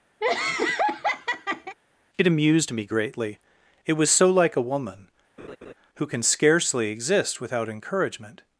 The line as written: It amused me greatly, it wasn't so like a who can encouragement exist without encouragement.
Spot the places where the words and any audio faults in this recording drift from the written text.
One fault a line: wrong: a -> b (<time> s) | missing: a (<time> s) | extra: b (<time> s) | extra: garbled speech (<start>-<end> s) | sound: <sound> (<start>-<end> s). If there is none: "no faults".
sound: laugh (0.2-1.8 s)
wrong: wasn't -> was (3.9 s)
extra: woman (4.6 s)
sound: laugh (5.4-5.7 s)
wrong: encouragement -> scarcely (6.2 s)